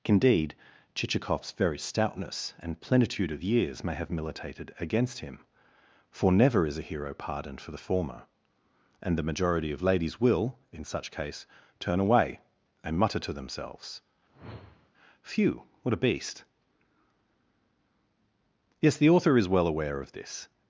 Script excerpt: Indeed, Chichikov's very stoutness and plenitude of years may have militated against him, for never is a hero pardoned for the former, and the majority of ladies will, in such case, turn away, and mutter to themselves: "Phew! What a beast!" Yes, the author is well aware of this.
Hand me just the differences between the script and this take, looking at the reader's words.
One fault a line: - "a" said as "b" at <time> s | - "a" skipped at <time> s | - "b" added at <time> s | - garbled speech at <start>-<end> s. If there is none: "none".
none